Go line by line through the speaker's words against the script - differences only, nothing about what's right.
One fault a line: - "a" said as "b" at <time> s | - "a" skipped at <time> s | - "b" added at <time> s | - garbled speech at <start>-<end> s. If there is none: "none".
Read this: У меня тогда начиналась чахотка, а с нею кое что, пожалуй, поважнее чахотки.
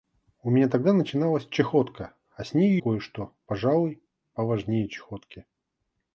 none